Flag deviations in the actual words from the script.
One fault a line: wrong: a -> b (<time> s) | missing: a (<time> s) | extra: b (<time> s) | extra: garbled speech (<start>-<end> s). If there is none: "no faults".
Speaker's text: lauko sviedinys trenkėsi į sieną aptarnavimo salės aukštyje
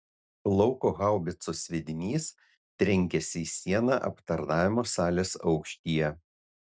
extra: haubicos (1.0 s)